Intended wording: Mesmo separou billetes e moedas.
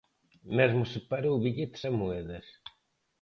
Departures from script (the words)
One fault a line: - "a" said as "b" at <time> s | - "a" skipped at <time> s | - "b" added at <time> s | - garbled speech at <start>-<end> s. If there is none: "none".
none